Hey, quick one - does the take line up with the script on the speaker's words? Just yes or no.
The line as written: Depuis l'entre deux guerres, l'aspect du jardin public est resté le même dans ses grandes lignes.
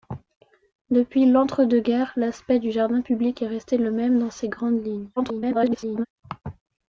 no